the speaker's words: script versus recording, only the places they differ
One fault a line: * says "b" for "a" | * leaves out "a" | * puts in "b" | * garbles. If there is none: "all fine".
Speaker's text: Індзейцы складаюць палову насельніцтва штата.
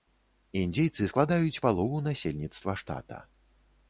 all fine